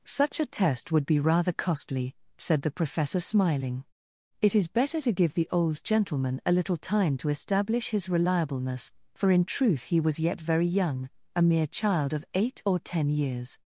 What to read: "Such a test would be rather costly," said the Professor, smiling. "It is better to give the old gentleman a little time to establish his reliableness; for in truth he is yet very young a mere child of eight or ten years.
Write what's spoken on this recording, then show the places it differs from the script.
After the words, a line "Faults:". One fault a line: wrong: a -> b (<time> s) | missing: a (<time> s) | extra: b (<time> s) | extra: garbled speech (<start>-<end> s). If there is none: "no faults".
"Such a test would be rather costly," said the Professor, smiling. "It is better to give the old gentleman a little time to establish his reliableness; for in truth he was yet very young a mere child of eight or ten years.
Faults:
wrong: is -> was (10.0 s)